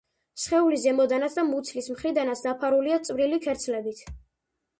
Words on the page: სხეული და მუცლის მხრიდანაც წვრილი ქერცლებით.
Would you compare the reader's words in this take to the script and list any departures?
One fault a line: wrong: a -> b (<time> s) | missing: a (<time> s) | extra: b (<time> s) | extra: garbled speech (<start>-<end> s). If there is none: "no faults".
extra: ზემოდანაც (0.8 s)
extra: დაფარულია (2.5 s)